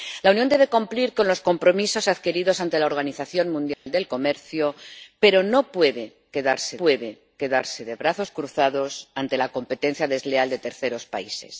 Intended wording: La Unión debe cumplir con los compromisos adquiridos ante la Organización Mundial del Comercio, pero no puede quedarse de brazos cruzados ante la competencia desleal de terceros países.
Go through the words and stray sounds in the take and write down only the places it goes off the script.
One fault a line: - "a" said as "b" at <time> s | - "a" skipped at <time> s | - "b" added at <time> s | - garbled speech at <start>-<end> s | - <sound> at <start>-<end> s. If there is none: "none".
- dropout at 3.7-3.9 s
- "puede quedarse" added at 6.8 s